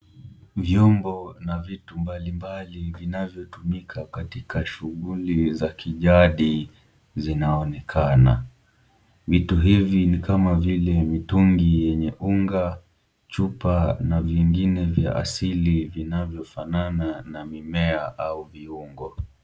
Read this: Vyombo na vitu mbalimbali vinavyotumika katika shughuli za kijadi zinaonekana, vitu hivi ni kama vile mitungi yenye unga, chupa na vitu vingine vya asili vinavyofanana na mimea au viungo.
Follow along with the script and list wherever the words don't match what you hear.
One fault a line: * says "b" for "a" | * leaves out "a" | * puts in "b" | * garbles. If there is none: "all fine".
* leaves out "vitu"